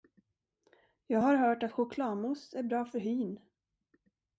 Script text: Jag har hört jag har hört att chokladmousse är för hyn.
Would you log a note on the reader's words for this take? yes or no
yes